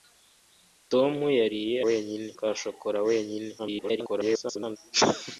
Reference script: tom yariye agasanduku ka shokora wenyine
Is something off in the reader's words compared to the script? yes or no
yes